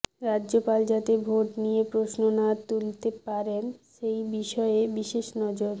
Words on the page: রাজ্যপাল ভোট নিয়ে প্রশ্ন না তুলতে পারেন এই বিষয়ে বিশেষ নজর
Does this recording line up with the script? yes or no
no